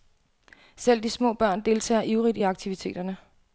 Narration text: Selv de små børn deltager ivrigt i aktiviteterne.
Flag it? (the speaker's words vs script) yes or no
no